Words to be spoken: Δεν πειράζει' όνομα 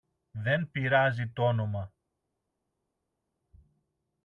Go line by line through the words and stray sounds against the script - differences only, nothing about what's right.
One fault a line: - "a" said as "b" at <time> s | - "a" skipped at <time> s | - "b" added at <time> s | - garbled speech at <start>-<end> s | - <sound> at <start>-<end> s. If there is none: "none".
- "τ" added at 1.3 s